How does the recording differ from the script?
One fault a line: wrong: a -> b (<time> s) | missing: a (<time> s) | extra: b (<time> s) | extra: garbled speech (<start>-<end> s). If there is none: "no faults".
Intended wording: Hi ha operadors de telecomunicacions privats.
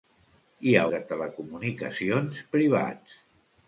missing: operadors (0.8 s)